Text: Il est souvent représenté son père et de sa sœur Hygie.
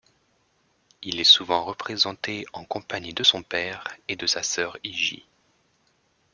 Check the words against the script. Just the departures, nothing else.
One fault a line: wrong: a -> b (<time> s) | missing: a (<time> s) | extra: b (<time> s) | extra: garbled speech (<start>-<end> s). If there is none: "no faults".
extra: en compagnie de (2.5 s)